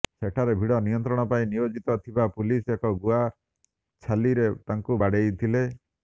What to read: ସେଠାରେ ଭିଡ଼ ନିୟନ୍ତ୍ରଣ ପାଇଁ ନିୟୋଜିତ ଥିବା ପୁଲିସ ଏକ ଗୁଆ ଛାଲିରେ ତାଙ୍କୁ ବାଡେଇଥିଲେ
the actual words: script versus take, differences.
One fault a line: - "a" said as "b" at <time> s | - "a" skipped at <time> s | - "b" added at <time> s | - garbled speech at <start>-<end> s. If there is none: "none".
none